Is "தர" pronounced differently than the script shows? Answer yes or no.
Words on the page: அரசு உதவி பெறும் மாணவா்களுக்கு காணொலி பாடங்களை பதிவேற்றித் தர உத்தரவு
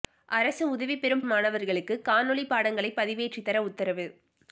no